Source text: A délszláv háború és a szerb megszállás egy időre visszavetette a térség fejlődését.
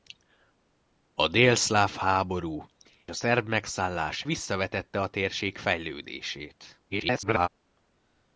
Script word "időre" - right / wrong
wrong